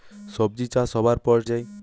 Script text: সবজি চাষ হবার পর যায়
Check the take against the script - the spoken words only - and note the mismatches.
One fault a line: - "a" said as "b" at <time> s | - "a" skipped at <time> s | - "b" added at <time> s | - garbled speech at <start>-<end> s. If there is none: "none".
none